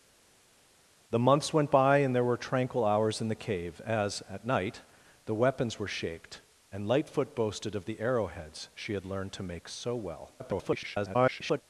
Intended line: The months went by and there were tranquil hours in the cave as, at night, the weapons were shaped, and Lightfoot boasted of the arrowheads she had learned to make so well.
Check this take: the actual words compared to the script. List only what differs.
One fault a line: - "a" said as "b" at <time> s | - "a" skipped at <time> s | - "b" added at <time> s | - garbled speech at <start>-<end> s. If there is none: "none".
- garbled speech at 10.4-11.6 s